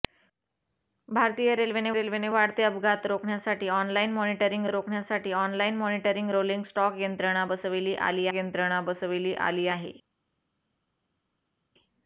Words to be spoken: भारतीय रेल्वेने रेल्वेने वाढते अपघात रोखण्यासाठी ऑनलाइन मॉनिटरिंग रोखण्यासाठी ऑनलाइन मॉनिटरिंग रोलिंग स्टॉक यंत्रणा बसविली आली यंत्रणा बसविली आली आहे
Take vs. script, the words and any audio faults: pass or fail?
pass